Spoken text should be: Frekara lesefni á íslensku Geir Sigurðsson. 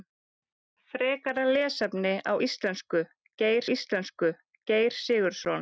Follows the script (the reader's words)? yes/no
no